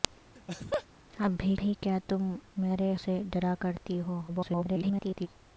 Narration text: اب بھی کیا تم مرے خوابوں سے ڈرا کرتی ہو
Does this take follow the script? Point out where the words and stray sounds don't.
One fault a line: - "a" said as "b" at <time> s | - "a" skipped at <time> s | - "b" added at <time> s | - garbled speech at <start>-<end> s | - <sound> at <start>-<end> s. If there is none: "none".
- laugh at 0.4-0.9 s
- "بھی" added at 1.6 s
- "خوابوں" skipped at 2.9 s
- garbled speech at 4.3-5.3 s